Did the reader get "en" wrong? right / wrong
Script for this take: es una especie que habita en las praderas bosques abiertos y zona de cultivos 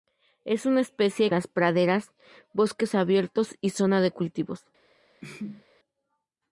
wrong